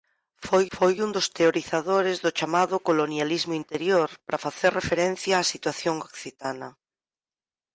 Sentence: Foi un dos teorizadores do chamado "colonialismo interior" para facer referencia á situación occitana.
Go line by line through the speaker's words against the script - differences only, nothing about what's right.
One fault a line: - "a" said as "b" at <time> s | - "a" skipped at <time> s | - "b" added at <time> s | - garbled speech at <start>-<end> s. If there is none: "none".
- "foi" added at 0.8 s